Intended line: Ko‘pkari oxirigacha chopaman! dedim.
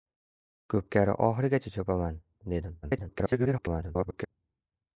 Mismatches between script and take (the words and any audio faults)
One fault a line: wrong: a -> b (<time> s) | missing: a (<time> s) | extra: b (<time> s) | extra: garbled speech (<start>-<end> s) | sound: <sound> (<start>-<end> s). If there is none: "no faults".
extra: garbled speech (2.8-4.3 s)